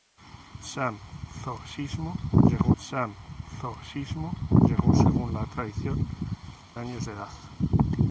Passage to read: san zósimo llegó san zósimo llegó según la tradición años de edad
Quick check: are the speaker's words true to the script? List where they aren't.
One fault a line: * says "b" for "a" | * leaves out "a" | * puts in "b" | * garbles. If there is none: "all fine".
all fine